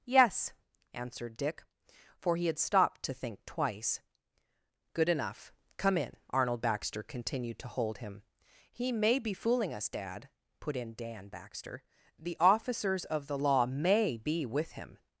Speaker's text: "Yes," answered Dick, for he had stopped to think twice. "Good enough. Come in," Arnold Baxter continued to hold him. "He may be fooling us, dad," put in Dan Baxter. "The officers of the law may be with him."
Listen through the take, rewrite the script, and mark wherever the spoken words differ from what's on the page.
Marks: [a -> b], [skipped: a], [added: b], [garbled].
"Yes," answered Dick, for he had stopped to think twice. "Good enough. Come in," Arnold Baxter continued to hold him. "He may be fooling us, dad," put in Dan Baxter. "The officers of the law may be with him."